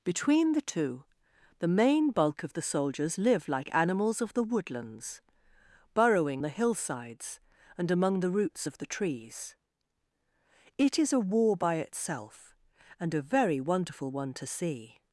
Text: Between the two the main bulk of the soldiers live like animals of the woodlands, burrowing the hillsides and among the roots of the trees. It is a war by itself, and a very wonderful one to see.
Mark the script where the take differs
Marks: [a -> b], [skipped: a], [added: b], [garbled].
Between the two the main bulk of the soldiers live like animals of the woodlands, burrowing the hillsides and among the roots of the trees. It is a war by itself, and a very wonderful one to see.